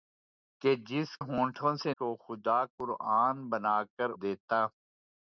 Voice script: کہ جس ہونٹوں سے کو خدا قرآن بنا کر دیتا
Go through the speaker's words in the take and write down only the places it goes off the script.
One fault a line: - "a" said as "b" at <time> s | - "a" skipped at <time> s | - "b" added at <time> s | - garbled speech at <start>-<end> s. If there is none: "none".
none